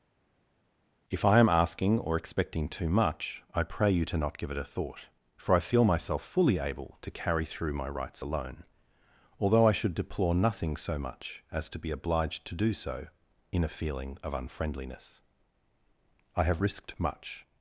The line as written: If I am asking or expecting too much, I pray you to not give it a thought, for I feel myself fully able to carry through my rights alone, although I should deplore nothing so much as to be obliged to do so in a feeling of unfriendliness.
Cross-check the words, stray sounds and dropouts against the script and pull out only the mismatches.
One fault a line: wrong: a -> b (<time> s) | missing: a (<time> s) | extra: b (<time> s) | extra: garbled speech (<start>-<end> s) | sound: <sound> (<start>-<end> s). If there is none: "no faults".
extra: I have risked much (16.3 s)